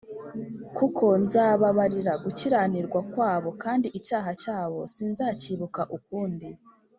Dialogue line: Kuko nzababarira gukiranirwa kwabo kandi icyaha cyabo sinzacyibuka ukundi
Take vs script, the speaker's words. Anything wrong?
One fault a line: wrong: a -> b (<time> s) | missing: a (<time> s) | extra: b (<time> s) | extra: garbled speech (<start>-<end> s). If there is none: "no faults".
no faults